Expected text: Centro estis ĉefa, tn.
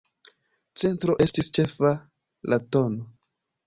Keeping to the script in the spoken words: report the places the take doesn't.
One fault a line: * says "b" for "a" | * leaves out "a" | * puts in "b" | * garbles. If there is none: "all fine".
* puts in "la"